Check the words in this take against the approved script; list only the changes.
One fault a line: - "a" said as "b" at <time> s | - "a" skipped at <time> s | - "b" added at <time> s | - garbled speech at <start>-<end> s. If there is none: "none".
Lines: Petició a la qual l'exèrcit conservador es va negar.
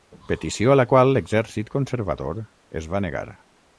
none